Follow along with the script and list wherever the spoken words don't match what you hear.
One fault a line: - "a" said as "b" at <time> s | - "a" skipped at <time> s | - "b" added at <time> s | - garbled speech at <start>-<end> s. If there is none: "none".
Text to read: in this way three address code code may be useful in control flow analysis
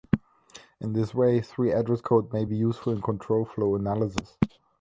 - "code" skipped at 2.3 s